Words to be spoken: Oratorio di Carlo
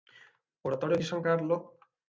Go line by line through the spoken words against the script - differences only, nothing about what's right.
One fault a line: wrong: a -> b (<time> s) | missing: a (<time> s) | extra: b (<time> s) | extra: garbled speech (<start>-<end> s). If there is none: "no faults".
extra: San (1.0 s)